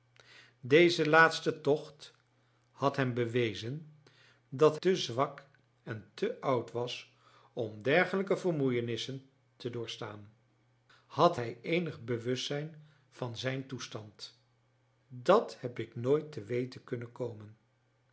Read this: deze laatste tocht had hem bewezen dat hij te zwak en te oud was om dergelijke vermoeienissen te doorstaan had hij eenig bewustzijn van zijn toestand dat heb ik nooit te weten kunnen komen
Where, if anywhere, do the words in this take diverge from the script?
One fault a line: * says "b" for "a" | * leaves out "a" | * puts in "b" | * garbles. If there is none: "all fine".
* leaves out "hij"